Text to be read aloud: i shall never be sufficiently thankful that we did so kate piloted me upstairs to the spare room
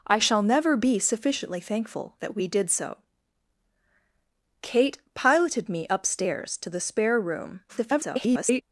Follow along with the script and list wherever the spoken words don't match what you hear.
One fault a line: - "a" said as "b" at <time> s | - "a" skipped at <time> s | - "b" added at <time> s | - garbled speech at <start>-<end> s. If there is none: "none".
- garbled speech at 7.7-8.6 s